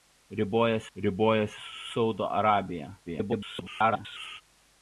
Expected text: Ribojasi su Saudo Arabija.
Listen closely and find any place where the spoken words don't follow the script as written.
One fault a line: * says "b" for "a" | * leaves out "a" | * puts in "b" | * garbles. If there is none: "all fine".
* puts in "ribojasi"
* garbles